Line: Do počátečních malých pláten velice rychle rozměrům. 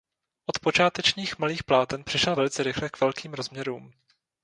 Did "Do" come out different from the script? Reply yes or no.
yes